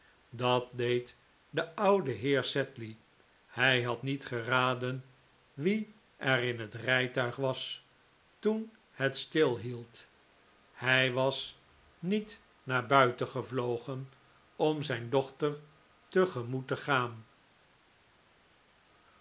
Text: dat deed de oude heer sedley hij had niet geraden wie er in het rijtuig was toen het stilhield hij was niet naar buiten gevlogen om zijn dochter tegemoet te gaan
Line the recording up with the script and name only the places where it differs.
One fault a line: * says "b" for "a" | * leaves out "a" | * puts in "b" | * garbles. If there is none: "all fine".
all fine